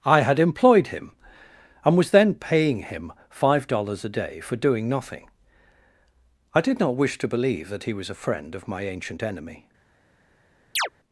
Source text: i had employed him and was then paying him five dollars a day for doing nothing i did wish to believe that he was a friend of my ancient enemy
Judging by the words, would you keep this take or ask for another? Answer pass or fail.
fail